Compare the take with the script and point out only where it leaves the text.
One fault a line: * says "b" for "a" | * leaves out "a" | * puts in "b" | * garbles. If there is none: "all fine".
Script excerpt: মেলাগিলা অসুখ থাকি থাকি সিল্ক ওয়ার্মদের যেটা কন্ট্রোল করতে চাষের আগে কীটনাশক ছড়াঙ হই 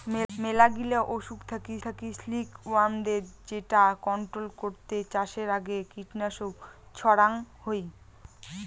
all fine